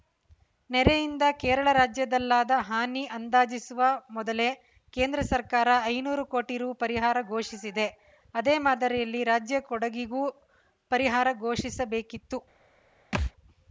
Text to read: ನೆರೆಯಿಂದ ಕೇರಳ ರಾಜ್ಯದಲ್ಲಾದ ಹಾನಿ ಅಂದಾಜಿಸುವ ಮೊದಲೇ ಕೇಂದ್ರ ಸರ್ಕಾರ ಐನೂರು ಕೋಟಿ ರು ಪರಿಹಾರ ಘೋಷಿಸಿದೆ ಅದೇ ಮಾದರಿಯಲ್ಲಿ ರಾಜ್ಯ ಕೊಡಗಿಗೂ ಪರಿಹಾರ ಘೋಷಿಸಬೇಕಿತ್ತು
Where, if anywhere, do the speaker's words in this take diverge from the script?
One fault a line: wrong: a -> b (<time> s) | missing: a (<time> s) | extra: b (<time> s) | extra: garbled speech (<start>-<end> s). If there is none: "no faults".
no faults